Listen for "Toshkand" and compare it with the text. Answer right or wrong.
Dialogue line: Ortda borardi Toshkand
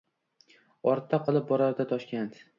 right